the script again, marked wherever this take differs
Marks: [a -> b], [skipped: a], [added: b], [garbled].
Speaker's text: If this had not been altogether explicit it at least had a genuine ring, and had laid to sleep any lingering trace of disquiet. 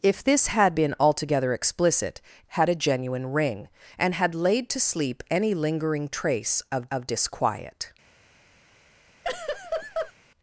If this had [skipped: not] been altogether explicit [skipped: it at least] had a genuine ring, and had laid to sleep any lingering trace of [added: of] disquiet.